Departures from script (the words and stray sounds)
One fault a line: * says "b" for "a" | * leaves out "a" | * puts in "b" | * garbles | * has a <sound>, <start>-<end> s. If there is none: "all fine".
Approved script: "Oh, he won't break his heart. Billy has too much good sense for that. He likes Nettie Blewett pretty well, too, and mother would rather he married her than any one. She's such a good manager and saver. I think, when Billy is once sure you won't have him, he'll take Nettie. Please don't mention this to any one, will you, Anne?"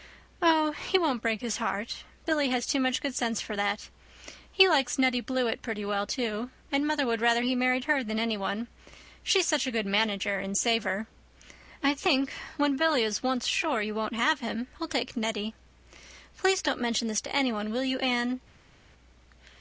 all fine